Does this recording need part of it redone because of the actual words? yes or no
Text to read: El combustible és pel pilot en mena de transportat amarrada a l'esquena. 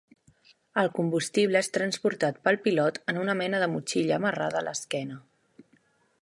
yes